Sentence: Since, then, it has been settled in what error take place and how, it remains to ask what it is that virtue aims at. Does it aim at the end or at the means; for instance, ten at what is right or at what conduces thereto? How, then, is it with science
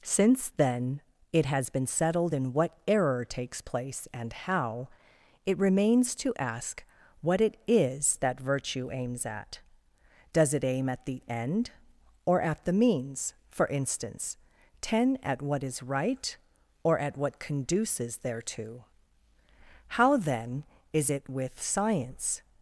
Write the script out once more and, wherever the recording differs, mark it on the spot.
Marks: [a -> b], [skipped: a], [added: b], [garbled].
Since, then, it has been settled in what error [take -> takes] place and how, it remains to ask what it is that virtue aims at. Does it aim at the end or at the means; for instance, ten at what is right or at what conduces thereto? How, then, is it with science